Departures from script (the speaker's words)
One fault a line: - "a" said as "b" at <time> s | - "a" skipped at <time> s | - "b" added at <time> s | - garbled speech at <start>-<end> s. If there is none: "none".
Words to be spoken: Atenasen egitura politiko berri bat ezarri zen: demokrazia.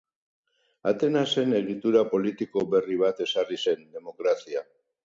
none